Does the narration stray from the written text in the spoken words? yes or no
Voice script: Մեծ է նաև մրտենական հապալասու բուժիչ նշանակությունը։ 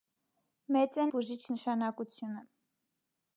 yes